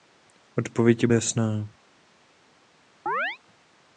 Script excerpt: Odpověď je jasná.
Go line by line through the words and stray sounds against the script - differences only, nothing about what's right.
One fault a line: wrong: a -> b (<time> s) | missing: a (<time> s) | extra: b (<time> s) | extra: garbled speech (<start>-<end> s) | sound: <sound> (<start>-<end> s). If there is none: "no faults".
sound: chirp (3.1-3.4 s)